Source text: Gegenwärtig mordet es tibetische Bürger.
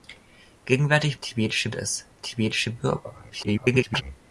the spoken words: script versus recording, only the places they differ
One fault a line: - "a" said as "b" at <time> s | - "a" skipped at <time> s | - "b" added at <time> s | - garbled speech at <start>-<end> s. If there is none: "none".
- "mordet" said as "tibetische" at 1.2 s
- garbled speech at 3.3-4.0 s